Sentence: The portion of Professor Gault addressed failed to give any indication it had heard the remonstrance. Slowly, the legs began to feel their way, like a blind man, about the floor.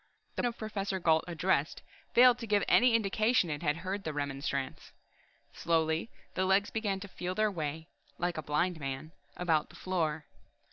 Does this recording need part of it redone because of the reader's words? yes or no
yes